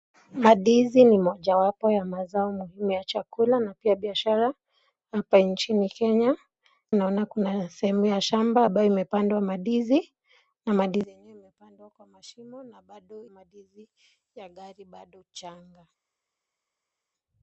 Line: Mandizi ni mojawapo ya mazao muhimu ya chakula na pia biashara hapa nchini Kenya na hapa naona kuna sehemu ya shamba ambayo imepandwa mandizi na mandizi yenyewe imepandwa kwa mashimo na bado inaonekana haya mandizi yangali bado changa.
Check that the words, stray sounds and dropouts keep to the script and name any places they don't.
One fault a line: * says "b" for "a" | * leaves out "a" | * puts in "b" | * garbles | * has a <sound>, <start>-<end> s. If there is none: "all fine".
* leaves out "na hapa"
* leaves out "inaonekana haya"